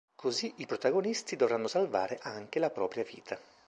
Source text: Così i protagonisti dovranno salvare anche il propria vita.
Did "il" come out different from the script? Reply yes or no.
yes